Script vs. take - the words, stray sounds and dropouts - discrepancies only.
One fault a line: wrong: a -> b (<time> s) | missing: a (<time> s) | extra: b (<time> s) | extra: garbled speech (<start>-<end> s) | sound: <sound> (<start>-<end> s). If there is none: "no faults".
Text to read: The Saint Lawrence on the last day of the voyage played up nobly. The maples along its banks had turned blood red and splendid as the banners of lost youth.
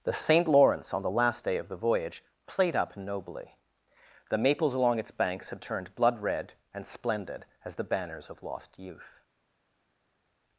no faults